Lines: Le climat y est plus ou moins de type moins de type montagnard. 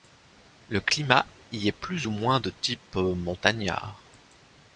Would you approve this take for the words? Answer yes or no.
no